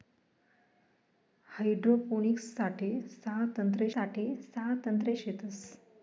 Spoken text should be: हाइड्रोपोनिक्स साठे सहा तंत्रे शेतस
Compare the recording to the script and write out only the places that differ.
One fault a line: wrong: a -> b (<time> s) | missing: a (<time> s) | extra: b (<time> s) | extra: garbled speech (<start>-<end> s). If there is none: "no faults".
extra: साठे सहा तंत्रे (3.9 s)